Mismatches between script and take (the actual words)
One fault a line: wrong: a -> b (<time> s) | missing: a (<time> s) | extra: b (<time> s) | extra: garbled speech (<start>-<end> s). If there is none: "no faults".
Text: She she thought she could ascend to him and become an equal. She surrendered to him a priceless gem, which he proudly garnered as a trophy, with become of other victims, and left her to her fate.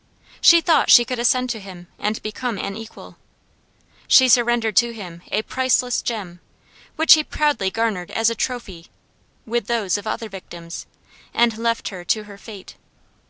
missing: she (0.6 s)
wrong: become -> those (9.7 s)